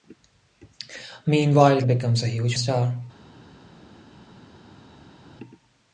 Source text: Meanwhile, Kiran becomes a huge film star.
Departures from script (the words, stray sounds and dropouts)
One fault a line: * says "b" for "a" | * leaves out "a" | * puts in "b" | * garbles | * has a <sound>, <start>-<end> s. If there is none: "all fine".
* leaves out "Kiran"
* leaves out "film"